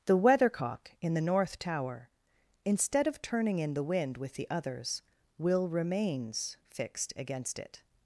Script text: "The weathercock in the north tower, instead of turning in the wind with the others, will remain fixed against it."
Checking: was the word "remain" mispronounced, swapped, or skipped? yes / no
yes